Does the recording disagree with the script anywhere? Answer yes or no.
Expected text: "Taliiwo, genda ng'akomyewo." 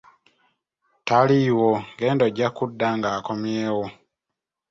yes